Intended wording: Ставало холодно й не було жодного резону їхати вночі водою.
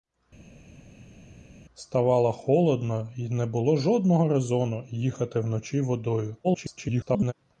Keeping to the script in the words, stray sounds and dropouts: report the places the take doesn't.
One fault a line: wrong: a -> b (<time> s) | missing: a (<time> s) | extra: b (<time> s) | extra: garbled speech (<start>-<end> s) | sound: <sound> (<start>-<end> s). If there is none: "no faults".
extra: garbled speech (6.4-7.3 s)